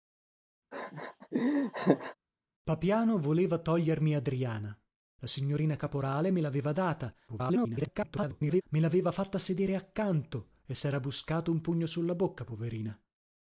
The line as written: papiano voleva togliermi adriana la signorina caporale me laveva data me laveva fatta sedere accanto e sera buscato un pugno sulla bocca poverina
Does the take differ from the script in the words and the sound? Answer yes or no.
yes